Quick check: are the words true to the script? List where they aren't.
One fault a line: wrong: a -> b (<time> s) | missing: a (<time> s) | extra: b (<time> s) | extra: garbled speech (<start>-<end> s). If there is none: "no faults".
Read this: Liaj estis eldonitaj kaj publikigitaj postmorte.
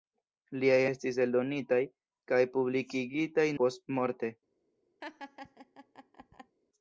no faults